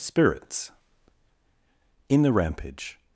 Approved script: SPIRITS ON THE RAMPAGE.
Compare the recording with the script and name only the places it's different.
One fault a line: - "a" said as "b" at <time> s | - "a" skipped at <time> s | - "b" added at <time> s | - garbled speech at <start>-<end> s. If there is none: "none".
- "ON" said as "In" at 2.1 s